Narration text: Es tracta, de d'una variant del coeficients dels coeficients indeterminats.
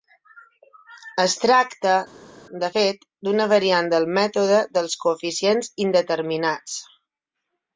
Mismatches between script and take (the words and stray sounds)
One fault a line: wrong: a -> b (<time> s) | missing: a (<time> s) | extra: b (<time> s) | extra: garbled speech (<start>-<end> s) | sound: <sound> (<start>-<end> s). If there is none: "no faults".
extra: fet (2.7 s)
wrong: coeficients -> mètode (4.2 s)